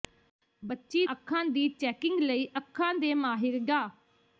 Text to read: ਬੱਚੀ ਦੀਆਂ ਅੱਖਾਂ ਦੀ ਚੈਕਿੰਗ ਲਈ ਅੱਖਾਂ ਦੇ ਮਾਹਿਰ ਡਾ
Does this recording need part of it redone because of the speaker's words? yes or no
yes